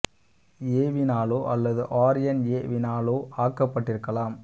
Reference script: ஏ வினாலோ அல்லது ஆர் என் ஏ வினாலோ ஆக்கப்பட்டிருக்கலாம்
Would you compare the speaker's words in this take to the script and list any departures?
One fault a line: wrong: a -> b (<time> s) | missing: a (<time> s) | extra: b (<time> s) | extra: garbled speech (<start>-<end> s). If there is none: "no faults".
no faults